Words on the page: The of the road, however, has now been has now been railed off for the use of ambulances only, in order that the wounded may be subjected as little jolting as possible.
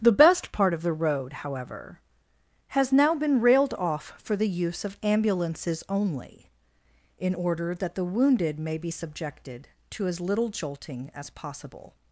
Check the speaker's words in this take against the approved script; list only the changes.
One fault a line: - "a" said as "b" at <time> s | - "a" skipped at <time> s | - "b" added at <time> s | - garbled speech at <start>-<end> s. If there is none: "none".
- "best part" added at 0.1 s
- "has now been" skipped at 3.4 s
- "to" added at 9.9 s